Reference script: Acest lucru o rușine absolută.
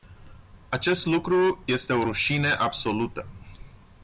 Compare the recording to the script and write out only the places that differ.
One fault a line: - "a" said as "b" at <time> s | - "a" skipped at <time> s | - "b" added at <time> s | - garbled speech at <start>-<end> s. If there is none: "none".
- "este" added at 1.7 s